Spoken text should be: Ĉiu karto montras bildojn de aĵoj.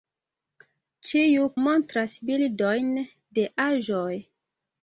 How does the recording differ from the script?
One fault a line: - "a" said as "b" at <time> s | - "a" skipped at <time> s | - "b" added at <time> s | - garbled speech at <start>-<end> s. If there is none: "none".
- "karto" skipped at 1.4 s